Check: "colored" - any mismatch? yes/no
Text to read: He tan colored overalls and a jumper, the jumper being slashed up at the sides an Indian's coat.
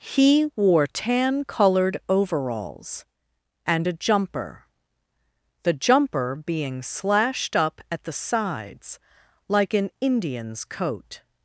no